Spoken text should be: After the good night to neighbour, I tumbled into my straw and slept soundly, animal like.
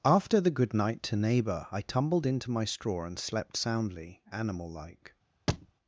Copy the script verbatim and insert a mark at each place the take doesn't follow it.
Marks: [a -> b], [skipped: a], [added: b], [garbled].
After the good night to neighbour, I tumbled into my straw and slept soundly, animal like.